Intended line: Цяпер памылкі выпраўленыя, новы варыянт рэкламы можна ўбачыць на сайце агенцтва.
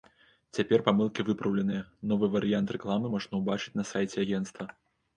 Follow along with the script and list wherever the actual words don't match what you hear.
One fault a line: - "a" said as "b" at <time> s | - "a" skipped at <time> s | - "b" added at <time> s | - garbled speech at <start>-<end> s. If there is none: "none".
none